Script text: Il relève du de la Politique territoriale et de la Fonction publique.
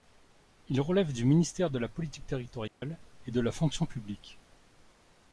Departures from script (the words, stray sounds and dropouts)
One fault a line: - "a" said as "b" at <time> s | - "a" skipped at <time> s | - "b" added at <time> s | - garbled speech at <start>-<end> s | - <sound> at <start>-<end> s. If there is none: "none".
- "ministère" added at 1.2 s
- dropout at 2.7-2.8 s